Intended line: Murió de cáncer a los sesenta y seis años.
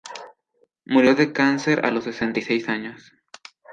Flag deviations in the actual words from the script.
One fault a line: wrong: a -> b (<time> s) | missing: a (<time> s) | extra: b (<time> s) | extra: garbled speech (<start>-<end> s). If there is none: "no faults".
no faults